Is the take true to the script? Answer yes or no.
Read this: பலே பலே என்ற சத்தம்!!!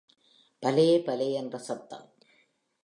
yes